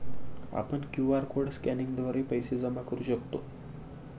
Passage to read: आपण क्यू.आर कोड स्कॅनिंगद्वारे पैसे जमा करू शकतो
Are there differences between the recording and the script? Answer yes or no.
no